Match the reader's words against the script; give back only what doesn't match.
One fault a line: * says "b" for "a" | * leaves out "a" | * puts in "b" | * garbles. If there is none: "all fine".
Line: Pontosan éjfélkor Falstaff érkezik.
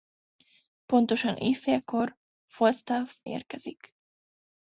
all fine